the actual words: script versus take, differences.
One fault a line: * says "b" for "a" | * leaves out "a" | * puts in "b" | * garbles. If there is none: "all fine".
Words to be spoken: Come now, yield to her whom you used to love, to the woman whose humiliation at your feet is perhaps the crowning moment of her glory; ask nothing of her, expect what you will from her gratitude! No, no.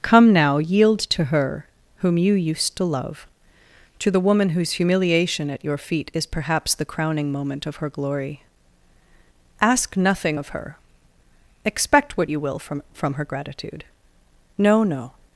* puts in "from"